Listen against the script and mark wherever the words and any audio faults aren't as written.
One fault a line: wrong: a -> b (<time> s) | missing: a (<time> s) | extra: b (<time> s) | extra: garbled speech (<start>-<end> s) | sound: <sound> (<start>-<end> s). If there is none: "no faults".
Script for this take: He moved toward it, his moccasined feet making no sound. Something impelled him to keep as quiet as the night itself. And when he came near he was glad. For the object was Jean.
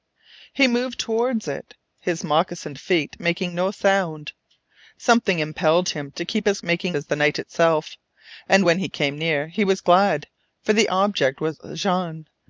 wrong: quiet -> making (6.6 s)